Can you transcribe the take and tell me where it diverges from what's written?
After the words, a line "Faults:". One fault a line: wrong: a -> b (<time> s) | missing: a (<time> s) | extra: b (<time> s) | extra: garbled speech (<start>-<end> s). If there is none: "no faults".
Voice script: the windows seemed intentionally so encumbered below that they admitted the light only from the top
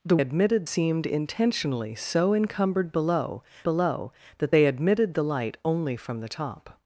the admitted seemed intentionally so encumbered below below that they admitted the light only from the top
Faults:
wrong: windows -> admitted (0.2 s)
extra: below (3.6 s)